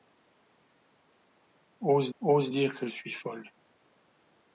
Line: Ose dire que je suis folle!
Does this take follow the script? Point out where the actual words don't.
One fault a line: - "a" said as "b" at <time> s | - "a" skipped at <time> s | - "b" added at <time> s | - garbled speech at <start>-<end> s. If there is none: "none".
- "ose" added at 2.2 s
- "je" skipped at 2.9 s